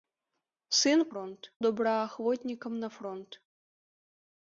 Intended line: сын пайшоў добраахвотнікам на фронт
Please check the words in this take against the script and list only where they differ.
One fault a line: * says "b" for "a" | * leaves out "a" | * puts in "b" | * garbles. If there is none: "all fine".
* says "фронт" for "пайшоў"